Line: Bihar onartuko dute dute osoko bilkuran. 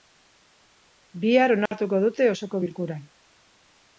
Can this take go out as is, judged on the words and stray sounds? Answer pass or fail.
fail